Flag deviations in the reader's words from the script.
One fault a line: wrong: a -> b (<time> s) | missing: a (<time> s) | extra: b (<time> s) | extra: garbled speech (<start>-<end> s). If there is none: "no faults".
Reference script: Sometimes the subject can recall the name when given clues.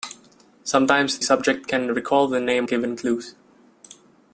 missing: the (1.2 s)
missing: when (2.7 s)